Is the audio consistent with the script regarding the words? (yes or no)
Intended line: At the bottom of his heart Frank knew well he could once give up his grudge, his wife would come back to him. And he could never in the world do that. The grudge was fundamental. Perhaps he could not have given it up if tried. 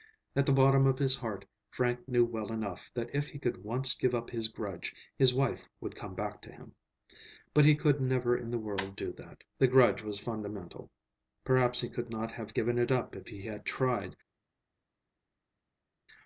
no